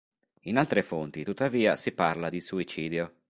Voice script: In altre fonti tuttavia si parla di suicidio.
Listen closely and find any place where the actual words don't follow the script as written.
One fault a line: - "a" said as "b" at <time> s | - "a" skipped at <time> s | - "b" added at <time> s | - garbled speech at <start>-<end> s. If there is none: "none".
none